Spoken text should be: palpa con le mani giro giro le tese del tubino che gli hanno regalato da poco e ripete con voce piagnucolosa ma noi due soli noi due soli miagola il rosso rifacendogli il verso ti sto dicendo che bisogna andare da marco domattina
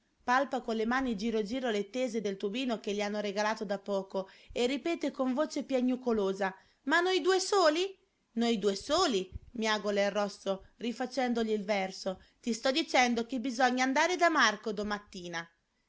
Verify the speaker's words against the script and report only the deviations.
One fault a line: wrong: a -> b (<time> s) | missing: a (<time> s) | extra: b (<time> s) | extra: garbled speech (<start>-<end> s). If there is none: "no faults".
no faults